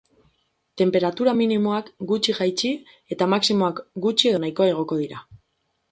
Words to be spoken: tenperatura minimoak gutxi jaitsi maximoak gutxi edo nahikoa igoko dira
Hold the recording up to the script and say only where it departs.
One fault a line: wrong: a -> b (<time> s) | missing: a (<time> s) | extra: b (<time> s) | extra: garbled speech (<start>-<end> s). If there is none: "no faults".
extra: eta (3.2 s)